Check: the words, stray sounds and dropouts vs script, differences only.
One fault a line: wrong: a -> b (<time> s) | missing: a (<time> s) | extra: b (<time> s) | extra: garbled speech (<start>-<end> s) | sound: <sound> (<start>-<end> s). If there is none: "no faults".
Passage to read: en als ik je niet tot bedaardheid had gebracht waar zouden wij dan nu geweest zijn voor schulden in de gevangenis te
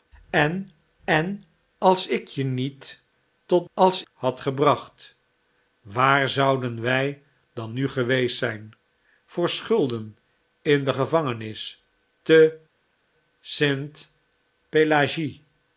extra: en (1.0 s)
wrong: bedaardheid -> als (3.7 s)